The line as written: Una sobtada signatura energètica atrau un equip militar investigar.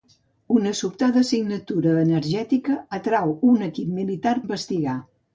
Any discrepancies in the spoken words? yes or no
no